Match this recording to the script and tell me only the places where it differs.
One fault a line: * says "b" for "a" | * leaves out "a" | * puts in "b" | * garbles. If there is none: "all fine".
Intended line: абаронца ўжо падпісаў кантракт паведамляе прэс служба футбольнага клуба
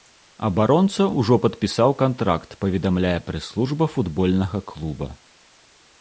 all fine